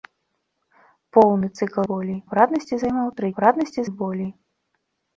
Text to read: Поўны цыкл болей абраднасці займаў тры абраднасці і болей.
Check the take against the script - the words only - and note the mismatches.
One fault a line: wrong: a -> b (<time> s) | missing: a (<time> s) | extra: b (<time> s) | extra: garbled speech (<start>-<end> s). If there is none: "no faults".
no faults